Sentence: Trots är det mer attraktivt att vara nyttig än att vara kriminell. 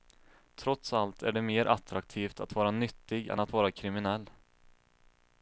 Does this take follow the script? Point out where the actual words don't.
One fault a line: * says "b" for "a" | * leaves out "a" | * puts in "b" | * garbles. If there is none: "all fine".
* puts in "allt"